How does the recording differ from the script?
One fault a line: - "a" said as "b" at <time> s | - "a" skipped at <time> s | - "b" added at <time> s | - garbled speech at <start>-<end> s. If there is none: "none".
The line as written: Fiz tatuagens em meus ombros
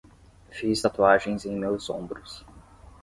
none